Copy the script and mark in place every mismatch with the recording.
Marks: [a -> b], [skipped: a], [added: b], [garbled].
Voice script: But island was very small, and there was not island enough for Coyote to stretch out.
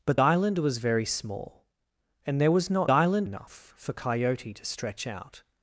But island was very small, and there was not island enough for Coyote to stretch out.